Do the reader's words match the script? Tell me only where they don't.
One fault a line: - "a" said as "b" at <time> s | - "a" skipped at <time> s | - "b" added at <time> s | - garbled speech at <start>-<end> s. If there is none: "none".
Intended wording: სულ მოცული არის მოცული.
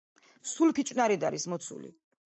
- "მოცული" said as "ფიჭვნარით" at 0.8 s